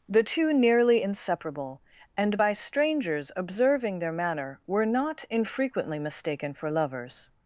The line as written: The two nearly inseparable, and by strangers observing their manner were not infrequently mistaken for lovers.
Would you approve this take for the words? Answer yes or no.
yes